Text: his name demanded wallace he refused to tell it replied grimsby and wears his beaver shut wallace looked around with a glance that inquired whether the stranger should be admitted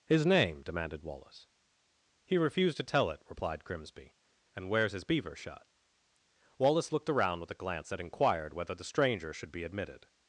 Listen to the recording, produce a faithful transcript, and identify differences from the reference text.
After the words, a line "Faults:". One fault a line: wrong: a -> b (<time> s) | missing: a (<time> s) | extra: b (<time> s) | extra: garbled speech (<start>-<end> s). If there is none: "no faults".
his name demanded wallace he refused to tell it replied grimsby and wears his beaver shut wallace looked around with a glance that inquired whether the stranger should be admitted
Faults:
no faults